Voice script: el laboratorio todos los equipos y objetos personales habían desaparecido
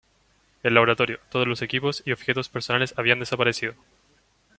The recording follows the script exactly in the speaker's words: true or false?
true